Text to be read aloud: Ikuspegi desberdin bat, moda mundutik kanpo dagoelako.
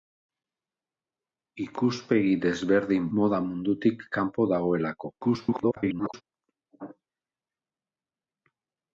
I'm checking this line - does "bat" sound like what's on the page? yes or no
no